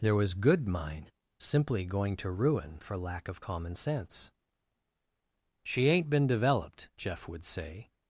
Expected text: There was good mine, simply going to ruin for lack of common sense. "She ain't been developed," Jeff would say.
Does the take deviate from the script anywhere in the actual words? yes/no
no